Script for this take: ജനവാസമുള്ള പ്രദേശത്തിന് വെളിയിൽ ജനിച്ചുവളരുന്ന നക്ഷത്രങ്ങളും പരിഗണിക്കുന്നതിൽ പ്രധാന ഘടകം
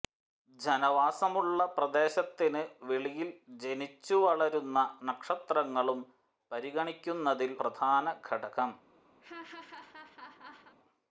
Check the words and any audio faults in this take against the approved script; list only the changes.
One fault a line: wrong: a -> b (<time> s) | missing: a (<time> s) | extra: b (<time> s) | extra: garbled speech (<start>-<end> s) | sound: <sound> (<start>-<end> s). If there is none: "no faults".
sound: laugh (9.2-10.8 s)